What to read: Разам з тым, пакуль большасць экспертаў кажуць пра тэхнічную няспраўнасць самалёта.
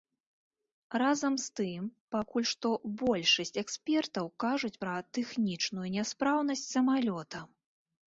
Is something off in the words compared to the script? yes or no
yes